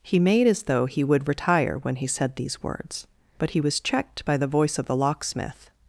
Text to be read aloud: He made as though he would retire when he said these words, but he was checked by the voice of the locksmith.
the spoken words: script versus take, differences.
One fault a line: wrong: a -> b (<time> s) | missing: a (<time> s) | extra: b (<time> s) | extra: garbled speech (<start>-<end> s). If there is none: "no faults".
no faults